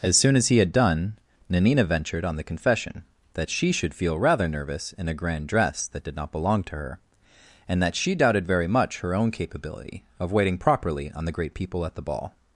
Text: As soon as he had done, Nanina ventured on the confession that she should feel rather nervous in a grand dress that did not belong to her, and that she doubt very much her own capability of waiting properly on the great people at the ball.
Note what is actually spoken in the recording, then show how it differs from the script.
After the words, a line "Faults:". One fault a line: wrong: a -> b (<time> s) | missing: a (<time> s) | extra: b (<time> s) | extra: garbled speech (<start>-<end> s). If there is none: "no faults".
As soon as he had done, Nanina ventured on the confession that she should feel rather nervous in a grand dress that did not belong to her, and that she doubted very much her own capability of waiting properly on the great people at the ball.
Faults:
wrong: doubt -> doubted (8.2 s)